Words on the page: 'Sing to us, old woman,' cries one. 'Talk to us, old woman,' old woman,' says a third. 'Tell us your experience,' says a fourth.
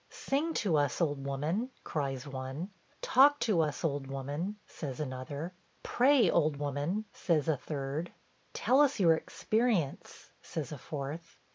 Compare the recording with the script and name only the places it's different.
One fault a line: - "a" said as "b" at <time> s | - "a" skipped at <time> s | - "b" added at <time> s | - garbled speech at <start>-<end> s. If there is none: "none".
- "says another Pray" added at 4.7 s